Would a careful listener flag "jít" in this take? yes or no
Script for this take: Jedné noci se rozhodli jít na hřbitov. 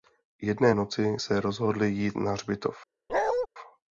no